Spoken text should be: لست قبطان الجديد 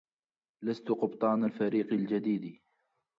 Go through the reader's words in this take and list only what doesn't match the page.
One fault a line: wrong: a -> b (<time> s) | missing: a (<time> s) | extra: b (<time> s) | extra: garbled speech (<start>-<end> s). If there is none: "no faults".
extra: الفريق (1.4 s)